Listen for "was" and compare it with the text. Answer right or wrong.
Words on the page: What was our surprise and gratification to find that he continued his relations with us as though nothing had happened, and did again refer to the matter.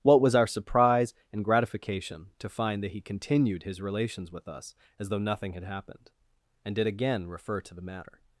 right